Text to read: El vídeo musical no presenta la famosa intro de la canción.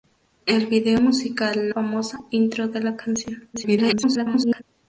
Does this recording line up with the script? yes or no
no